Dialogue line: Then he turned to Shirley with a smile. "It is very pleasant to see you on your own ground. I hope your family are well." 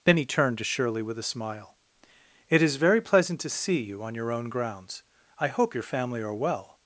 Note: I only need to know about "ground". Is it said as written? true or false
false